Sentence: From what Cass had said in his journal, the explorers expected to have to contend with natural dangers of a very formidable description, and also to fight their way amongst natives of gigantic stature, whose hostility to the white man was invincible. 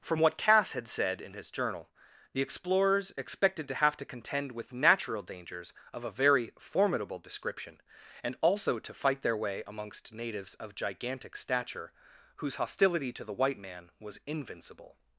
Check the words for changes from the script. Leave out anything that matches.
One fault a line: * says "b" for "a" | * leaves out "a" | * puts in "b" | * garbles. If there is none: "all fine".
all fine